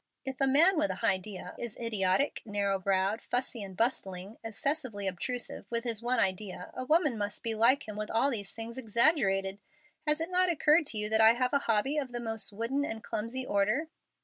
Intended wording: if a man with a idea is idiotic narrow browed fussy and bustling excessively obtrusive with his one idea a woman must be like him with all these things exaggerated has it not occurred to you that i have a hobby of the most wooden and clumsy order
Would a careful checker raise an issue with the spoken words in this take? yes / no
no